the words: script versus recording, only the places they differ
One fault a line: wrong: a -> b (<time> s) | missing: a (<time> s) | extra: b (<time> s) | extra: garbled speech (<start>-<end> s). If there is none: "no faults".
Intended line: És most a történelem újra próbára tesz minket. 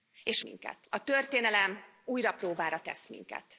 wrong: most -> minket (0.4 s)